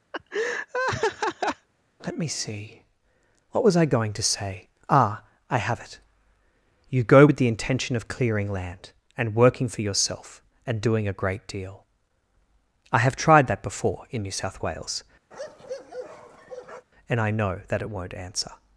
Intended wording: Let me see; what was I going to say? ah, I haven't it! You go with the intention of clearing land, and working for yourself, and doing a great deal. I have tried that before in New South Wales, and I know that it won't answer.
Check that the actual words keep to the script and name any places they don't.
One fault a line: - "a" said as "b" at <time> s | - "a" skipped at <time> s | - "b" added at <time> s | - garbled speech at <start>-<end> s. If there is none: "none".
- "haven't" said as "have" at 5.6 s